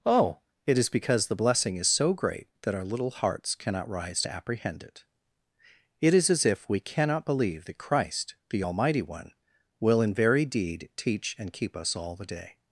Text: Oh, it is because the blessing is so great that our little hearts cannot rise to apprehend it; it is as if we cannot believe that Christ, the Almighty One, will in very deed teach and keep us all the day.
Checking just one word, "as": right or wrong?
right